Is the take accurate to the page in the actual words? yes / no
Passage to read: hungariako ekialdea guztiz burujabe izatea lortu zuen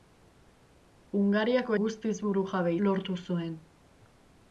no